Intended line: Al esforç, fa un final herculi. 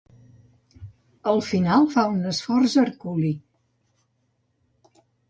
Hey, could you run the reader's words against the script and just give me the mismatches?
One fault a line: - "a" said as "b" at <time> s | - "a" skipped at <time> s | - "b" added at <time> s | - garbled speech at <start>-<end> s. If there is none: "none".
- "esforç" said as "final" at 1.5 s
- "final" said as "esforç" at 2.3 s